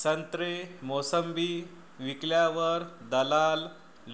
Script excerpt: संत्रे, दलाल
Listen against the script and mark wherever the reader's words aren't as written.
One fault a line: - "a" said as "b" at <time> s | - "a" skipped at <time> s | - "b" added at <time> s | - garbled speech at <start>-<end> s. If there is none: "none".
- "मोसंबी विकल्यावर" added at 0.8 s